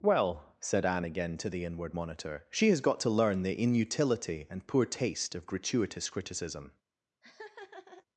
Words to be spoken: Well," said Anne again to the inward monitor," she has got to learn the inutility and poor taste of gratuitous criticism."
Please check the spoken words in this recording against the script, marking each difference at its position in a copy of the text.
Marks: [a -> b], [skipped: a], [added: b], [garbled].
Well," said Anne again to the inward monitor," she has got to learn the inutility and poor taste of gratuitous criticism."